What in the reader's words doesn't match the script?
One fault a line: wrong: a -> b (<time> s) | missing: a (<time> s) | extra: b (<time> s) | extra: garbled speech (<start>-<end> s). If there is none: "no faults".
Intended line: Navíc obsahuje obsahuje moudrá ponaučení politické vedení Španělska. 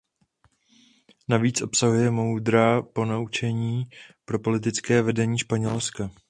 missing: obsahuje (2.1 s)
extra: pro (4.2 s)